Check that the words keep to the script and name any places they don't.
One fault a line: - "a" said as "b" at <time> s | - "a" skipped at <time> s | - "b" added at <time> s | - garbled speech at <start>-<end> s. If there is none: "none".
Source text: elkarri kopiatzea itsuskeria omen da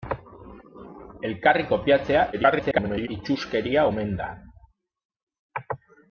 - garbled speech at 2.3-3.1 s